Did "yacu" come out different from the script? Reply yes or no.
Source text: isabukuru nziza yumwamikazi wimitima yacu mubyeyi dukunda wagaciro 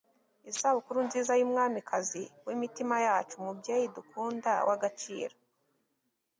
no